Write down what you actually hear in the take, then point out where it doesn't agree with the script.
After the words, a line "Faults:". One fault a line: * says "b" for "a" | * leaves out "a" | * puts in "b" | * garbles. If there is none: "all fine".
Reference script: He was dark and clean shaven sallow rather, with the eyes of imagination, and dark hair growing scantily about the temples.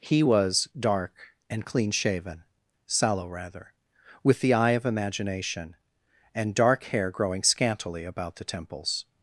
He was dark and clean shaven sallow rather, with the eye of imagination, and dark hair growing scantily about the temples.
Faults:
* says "eye" for "eyes"